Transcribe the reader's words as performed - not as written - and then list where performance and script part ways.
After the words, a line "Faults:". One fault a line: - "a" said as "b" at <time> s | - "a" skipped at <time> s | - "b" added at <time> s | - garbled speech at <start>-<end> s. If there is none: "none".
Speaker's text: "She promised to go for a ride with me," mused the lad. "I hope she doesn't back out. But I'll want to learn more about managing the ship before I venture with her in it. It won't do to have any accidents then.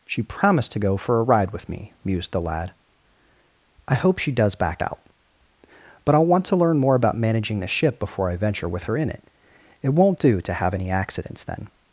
"She promised to go for a ride with me," mused the lad. "I hope she does back out. But I'll want to learn more about managing the ship before I venture with her in it. It won't do to have any accidents then.
Faults:
- "doesn't" said as "does" at 4.3 s